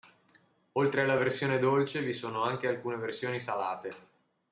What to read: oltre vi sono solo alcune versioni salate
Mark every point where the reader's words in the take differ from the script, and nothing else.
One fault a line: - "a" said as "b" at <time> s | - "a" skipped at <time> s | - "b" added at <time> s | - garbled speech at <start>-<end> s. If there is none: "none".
- "alla versione dolce" added at 1.0 s
- "solo" said as "anche" at 2.4 s